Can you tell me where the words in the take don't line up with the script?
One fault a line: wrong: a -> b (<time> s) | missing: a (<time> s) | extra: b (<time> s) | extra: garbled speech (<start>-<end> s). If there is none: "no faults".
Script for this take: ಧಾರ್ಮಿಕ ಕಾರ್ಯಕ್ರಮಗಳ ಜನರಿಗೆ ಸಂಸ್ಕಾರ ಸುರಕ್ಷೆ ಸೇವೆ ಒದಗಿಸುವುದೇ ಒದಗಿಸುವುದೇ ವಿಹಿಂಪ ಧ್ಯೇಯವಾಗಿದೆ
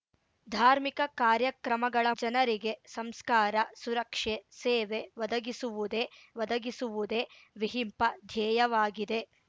no faults